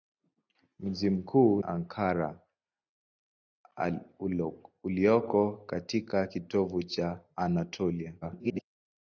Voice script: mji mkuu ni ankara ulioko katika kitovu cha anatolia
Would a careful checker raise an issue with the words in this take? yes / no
yes